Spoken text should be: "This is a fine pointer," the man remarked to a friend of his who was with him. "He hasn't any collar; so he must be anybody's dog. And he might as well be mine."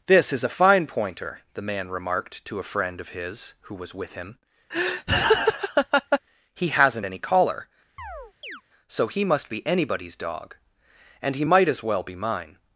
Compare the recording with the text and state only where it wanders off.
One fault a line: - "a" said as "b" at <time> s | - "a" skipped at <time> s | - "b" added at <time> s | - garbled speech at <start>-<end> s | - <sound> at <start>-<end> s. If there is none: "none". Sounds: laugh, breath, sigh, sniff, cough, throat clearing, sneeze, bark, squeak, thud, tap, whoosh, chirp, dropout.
- laugh at 4.7-6.2 s
- chirp at 8.0-8.6 s